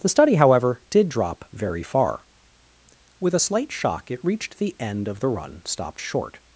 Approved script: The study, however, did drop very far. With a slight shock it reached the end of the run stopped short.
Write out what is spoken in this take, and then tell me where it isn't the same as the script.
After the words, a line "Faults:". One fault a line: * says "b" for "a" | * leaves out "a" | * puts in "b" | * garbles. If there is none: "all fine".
The study, however, did drop very far. With a slight shock it reached the end of the run stopped short.
Faults:
all fine